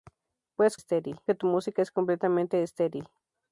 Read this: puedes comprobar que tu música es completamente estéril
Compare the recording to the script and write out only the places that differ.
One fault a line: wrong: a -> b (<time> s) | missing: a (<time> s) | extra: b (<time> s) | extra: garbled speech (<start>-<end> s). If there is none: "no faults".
wrong: comprobar -> estéril (0.7 s)